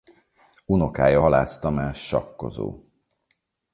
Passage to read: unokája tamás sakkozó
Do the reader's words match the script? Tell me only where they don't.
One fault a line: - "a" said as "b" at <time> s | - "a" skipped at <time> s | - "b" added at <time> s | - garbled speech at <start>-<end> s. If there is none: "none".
- "halász" added at 1.1 s